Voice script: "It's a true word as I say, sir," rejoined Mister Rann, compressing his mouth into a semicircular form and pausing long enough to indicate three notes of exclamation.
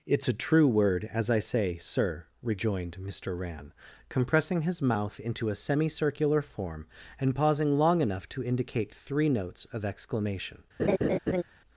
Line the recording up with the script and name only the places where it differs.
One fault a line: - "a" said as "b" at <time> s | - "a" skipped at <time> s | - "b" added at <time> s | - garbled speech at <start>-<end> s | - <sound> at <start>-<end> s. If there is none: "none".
- laugh at 10.8-11.4 s